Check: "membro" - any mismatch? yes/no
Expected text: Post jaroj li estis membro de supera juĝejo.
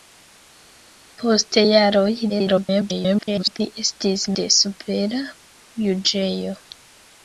yes